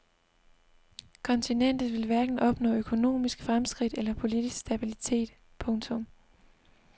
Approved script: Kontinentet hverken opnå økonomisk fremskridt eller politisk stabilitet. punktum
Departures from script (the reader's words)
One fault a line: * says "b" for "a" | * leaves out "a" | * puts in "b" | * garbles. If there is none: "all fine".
* puts in "vil"